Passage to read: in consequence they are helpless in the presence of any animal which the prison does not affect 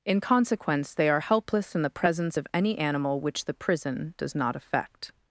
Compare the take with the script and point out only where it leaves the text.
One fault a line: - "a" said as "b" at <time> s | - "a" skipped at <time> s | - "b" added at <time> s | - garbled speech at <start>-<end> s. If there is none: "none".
none